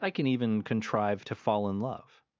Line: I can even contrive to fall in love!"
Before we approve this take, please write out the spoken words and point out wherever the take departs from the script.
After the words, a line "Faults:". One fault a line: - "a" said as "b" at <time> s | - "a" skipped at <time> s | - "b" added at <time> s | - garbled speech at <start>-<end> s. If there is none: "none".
I can even contrive to fall in love!"
Faults:
none